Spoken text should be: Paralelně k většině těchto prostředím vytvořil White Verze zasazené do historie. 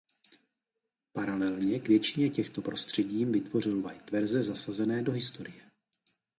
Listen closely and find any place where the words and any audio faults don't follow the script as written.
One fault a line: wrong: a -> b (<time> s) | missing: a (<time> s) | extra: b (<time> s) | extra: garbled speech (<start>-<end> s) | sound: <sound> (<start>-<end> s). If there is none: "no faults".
no faults